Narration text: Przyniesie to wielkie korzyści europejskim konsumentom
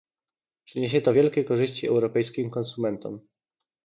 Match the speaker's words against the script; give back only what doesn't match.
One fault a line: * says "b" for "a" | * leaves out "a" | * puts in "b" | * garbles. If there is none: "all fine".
all fine